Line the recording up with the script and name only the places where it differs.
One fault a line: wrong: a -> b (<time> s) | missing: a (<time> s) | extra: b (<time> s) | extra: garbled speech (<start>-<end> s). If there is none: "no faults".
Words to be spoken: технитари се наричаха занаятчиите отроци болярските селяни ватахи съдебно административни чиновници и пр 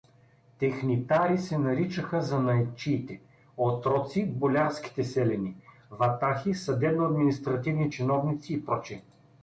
no faults